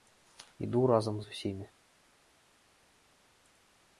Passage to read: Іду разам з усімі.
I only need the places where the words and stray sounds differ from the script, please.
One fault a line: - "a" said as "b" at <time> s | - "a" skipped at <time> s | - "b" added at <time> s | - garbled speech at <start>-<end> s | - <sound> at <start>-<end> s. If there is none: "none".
none